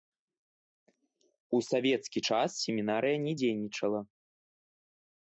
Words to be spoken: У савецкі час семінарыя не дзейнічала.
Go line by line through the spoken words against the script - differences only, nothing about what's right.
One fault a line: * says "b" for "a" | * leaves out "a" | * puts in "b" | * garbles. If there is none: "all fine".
all fine